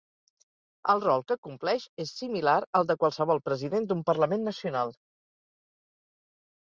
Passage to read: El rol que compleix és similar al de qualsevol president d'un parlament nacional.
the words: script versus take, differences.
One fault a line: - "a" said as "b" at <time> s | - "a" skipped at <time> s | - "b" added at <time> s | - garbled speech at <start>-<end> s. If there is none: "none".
none